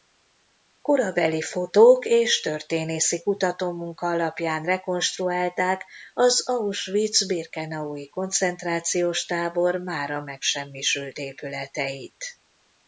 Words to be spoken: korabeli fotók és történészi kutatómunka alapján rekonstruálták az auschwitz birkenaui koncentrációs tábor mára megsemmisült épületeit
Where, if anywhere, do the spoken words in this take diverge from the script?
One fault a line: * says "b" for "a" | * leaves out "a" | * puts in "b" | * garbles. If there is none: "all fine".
all fine